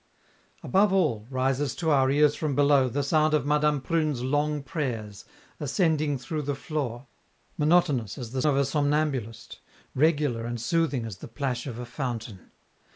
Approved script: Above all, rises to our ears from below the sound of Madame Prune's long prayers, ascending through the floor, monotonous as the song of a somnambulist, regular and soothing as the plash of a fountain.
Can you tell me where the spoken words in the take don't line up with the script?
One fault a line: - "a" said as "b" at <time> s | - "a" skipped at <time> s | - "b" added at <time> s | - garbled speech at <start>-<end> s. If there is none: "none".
- "song" skipped at 8.4 s